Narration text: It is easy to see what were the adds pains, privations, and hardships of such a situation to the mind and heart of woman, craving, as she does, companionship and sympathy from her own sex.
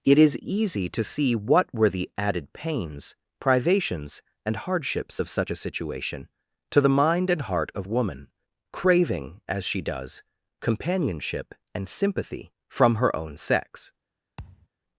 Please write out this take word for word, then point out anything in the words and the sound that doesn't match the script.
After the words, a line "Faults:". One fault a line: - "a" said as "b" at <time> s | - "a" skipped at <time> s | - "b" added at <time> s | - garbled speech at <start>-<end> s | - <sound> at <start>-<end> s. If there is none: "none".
It is easy to see what were the added pains, privations, and hardships of such a situation to the mind and heart of woman, craving, as she does, companionship and sympathy from her own sex.
Faults:
- "adds" said as "added" at 2.2 s
- thud at 14.4-14.7 s